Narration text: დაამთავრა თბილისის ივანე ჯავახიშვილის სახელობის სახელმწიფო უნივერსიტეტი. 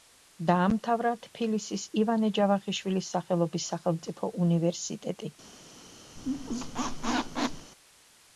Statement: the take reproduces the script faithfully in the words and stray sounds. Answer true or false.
false